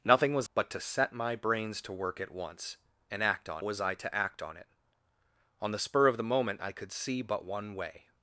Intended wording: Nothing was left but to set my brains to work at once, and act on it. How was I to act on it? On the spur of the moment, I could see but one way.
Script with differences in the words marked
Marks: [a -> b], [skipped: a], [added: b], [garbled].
Nothing was [skipped: left] but to set my brains to work at once, and act on [skipped: it. How] was I to act on it? On the spur of the moment, I could see but one way.